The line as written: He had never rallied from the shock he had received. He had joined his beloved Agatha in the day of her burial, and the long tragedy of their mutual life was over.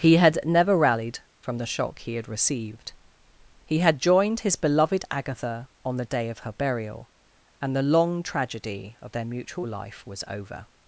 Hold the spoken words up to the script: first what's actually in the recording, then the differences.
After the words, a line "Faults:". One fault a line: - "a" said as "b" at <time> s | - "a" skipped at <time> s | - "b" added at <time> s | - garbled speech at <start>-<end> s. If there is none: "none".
He had never rallied from the shock he had received. He had joined his beloved Agatha on the day of her burial, and the long tragedy of their mutual life was over.
Faults:
- "in" said as "on" at 5.8 s